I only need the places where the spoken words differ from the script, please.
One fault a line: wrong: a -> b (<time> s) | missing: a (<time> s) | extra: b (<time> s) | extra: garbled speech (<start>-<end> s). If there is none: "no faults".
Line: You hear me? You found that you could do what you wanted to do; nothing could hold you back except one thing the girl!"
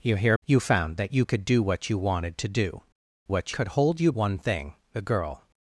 missing: me (0.3 s)
wrong: nothing -> what (3.3 s)
missing: back except (4.1 s)